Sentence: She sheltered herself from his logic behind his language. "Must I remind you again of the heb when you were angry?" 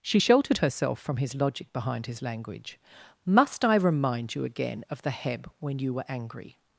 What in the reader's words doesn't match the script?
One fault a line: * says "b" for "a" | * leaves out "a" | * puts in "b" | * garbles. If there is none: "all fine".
all fine